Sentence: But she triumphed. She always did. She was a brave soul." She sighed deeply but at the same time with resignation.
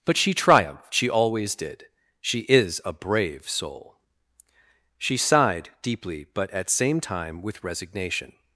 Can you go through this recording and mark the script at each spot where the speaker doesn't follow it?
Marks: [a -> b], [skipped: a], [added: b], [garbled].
But she triumphed. She always did. She [was -> is] a brave soul." She sighed deeply but at [skipped: the] same time with resignation.